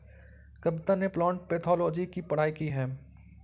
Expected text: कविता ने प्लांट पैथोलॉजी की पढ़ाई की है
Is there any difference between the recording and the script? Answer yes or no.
no